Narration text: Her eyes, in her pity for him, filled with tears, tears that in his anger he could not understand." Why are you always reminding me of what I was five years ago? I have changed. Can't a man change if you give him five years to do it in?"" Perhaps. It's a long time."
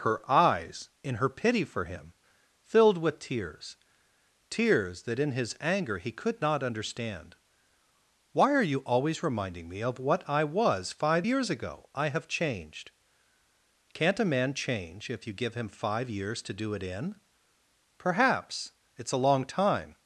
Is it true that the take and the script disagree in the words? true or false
false